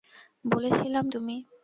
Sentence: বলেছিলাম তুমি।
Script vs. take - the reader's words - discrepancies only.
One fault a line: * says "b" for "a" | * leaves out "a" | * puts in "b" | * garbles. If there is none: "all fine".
all fine